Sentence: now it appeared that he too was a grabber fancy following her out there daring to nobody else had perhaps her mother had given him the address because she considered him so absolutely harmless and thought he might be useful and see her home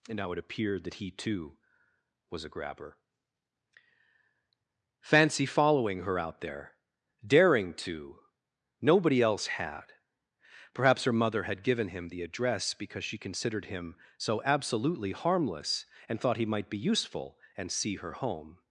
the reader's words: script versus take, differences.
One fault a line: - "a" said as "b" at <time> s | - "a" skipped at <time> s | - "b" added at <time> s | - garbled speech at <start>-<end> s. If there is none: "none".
- "and" added at 0.1 s